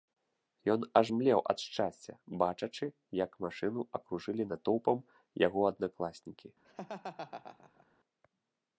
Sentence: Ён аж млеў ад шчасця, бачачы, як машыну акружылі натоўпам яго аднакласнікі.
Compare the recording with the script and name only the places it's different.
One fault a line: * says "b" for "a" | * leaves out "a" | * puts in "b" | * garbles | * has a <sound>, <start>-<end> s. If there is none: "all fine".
* has a laugh, 6.6-7.9 s